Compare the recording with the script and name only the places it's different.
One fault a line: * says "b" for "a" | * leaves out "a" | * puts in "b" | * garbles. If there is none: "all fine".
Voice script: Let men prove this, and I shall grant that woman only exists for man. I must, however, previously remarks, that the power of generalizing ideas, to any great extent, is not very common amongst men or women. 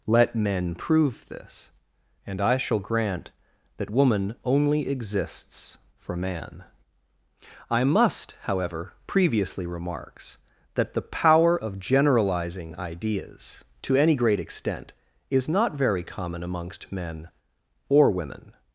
all fine